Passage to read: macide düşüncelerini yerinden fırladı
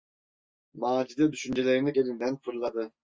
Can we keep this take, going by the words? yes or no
yes